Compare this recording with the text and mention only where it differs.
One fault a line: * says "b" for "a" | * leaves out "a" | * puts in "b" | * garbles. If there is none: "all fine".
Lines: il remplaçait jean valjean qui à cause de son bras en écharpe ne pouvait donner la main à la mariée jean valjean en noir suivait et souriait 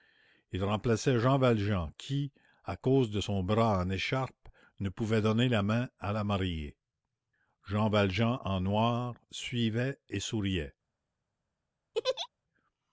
all fine